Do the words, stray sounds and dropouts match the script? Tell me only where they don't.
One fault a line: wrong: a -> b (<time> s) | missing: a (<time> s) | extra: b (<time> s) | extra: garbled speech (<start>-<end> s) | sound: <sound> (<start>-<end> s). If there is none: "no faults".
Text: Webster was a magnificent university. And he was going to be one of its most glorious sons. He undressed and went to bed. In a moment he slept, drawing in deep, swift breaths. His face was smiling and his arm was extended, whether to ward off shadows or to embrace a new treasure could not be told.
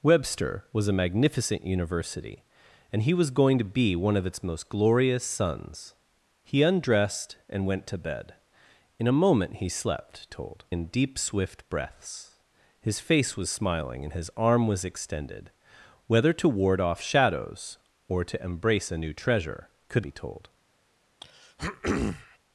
wrong: drawing -> told (10.3 s)
missing: not (20.0 s)
sound: throat clearing (21.2-22.4 s)